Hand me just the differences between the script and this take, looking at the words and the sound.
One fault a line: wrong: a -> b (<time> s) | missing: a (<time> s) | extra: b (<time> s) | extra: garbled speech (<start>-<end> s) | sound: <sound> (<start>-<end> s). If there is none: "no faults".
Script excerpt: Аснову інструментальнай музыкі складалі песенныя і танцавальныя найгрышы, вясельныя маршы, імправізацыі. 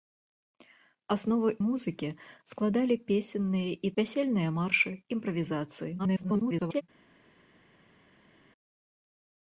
missing: інструментальнай (1.5 s)
missing: танцавальныя найгрышы (3.9 s)
extra: garbled speech (6.0-6.8 s)